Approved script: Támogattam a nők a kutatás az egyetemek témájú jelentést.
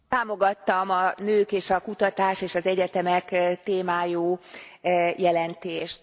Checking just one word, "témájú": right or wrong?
right